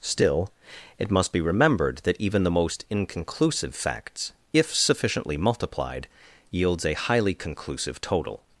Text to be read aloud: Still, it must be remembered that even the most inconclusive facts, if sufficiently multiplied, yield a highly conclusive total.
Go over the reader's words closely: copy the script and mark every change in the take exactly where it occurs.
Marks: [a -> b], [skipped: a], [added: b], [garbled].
Still, it must be remembered that even the most inconclusive facts, if sufficiently multiplied, [yield -> yields] a highly conclusive total.